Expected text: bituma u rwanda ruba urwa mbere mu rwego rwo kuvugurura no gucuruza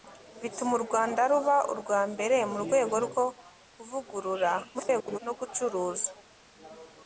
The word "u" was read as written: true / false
true